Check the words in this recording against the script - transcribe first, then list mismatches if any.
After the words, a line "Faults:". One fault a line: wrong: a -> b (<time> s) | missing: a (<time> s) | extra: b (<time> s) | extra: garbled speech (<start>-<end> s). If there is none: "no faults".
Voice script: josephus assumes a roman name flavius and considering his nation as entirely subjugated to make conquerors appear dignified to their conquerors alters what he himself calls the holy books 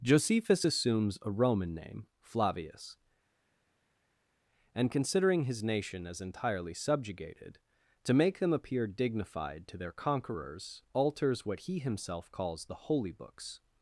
josephus assumes a roman name flavius and considering his nation as entirely subjugated to make them appear dignified to their conquerors alters what he himself calls the holy books
Faults:
wrong: conquerors -> them (8.4 s)